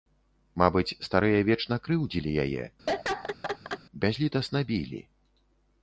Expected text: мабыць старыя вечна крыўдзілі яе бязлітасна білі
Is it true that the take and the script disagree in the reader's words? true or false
false